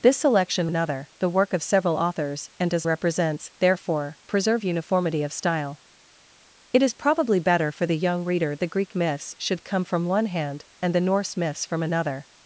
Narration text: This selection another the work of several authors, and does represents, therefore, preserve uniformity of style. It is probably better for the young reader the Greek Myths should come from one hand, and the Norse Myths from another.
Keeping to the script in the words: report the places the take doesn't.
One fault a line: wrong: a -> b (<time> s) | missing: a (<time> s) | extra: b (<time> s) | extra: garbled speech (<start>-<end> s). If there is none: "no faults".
no faults